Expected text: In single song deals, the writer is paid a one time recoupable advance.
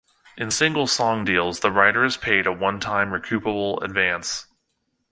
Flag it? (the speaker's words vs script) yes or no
no